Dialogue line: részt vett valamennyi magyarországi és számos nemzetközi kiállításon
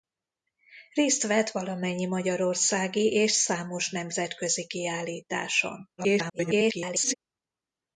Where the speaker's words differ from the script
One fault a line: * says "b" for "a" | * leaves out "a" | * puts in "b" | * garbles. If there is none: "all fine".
* garbles